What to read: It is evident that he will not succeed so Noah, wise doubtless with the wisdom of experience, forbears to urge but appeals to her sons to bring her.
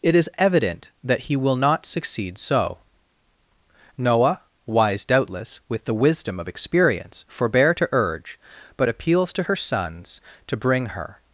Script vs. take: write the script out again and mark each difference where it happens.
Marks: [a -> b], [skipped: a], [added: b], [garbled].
It is evident that he will not succeed so Noah, wise doubtless with the wisdom of experience, [forbears -> forbear] to urge but appeals to her sons to bring her.